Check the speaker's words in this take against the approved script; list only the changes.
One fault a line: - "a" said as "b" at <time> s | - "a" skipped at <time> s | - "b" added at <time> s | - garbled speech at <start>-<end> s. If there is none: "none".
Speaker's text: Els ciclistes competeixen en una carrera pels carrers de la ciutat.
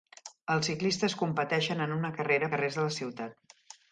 - "pels" skipped at 2.5 s